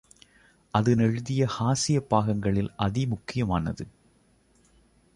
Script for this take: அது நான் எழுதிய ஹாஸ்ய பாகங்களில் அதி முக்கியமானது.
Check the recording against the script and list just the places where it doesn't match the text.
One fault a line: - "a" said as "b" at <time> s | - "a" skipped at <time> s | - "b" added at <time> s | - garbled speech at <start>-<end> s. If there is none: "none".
- "நான்" skipped at 0.9 s